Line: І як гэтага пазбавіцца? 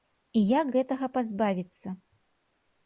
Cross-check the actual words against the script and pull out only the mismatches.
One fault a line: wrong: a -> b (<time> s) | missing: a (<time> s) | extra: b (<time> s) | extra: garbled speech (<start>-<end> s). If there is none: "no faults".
no faults